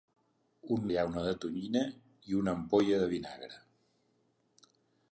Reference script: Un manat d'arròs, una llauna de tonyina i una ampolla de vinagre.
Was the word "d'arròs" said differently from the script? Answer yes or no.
yes